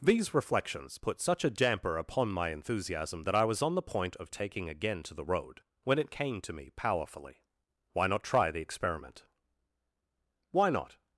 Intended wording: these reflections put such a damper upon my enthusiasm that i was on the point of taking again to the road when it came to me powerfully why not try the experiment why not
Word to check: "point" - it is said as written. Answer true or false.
true